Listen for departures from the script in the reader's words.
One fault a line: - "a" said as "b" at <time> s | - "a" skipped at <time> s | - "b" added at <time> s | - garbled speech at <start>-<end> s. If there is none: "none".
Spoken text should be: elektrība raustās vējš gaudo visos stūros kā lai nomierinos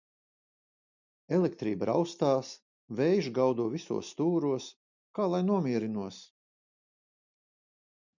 none